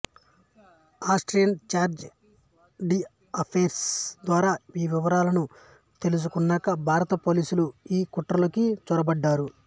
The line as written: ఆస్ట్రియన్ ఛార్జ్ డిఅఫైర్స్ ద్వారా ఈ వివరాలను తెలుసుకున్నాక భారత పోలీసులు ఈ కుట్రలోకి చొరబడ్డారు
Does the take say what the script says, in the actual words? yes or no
yes